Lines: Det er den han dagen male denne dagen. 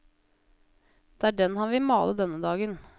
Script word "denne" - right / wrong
right